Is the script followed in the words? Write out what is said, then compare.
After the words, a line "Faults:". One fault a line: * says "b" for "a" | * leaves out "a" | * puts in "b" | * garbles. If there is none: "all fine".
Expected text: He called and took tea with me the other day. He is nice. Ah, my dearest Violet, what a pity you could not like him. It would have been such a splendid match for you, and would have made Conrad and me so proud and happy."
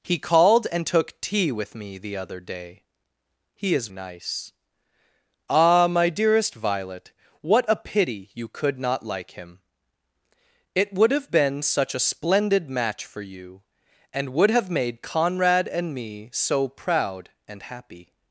He called and took tea with me the other day. He is nice. Ah, my dearest Violet, what a pity you could not like him. It would have been such a splendid match for you, and would have made Conrad and me so proud and happy."
Faults:
all fine